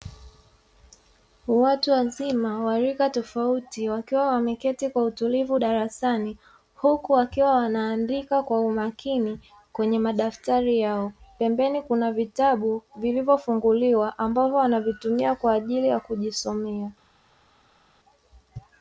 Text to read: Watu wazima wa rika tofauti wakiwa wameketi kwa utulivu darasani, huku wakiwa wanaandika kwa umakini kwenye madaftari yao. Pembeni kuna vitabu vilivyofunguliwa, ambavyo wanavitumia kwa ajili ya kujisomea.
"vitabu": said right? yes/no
yes